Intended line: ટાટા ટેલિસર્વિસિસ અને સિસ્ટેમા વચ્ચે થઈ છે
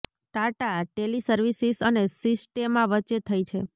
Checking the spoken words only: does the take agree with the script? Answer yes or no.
yes